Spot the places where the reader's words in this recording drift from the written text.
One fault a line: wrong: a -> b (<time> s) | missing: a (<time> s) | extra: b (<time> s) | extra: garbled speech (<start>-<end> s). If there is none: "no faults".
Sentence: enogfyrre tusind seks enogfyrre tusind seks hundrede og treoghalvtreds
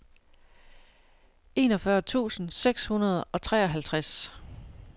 missing: enogfyrre tusind seks (2.9 s)